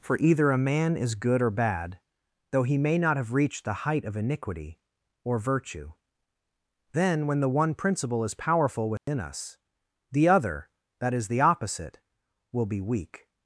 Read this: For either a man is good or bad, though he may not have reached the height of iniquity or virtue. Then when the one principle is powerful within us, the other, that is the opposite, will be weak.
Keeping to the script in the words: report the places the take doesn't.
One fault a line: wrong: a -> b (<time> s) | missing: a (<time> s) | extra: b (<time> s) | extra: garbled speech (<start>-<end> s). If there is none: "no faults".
no faults